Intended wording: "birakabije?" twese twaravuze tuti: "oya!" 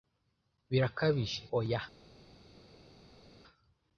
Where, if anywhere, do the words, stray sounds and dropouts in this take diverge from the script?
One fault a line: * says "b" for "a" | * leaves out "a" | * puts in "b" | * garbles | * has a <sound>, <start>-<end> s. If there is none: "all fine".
* leaves out "twese twaravuze tuti"